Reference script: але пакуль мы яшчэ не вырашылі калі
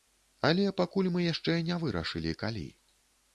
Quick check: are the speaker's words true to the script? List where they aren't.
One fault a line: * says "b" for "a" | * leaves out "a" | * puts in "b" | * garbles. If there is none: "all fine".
all fine